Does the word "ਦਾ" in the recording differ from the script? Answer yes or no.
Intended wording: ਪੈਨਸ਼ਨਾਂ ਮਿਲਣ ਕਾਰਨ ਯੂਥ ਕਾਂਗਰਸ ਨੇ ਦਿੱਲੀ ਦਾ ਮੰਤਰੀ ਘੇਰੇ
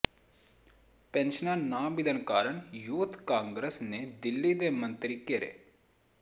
yes